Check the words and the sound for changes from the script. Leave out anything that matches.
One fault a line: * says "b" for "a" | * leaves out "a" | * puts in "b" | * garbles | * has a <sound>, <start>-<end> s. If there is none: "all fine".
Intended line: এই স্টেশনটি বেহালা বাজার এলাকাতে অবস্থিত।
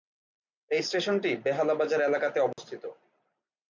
* has a dropout, 2.5-2.6 s